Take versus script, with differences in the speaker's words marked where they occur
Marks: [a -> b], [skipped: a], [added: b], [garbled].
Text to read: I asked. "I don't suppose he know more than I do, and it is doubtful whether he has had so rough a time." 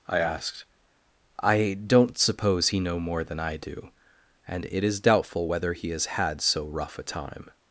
I asked. "I don't suppose he know more than I do, and it is doubtful whether he has had so rough a time."